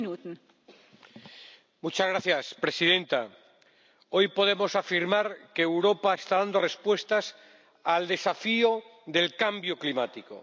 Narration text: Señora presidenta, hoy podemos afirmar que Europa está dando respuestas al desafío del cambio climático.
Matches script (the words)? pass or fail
pass